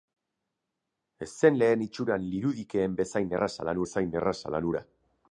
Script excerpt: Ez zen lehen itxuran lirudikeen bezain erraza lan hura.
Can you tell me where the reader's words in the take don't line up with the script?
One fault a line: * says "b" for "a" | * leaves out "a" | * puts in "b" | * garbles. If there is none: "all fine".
* puts in "bezain erraza lan"